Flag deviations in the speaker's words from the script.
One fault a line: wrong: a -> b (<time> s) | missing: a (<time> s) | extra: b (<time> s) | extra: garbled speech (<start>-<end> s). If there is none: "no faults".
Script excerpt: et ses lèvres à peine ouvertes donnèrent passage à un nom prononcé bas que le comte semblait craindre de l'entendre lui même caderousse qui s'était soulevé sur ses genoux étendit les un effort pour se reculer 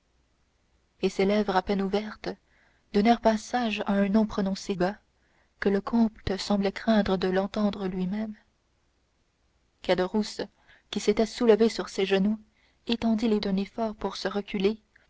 no faults